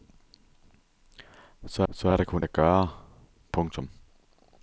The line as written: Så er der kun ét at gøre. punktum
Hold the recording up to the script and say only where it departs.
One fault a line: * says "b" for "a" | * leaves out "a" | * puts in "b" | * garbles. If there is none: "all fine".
* puts in "så"
* leaves out "ét"